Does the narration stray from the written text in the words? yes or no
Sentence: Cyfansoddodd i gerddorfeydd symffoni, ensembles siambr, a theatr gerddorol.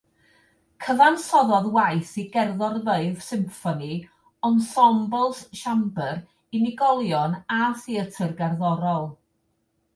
yes